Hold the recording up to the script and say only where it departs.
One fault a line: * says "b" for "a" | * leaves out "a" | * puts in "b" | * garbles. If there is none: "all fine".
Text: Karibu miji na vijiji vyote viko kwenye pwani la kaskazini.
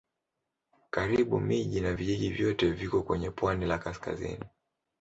all fine